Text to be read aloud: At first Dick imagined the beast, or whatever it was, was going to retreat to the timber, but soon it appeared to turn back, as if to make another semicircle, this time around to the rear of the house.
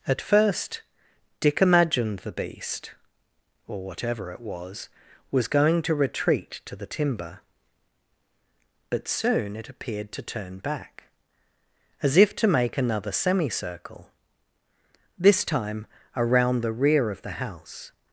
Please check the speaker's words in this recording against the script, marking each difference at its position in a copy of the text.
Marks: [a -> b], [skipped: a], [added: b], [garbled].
At first Dick imagined the beast, or whatever it was, was going to retreat to the timber, but soon it appeared to turn back, as if to make another semicircle, this time around [skipped: to] the rear of the house.